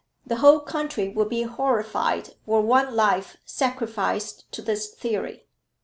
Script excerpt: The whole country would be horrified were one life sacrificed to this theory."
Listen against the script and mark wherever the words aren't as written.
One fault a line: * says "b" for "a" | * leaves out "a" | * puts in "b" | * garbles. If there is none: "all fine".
all fine